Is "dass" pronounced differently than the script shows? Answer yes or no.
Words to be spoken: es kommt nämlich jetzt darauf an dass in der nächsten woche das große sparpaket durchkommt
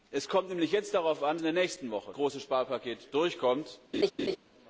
yes